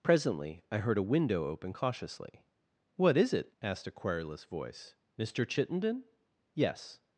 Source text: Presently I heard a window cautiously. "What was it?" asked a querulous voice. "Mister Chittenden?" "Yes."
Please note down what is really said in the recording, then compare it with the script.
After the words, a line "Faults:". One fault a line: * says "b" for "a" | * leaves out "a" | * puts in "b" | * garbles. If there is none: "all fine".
Presently I heard a window open cautiously. "What is it?" asked a querulous voice. "Mister Chittenden?" "Yes."
Faults:
* puts in "open"
* says "is" for "was"